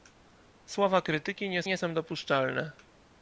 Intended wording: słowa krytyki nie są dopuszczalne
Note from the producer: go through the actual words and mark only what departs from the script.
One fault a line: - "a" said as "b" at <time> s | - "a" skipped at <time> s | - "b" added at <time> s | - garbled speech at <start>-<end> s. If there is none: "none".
- "nie" added at 1.6 s